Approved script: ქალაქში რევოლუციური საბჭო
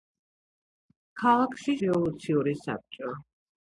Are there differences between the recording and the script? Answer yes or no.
no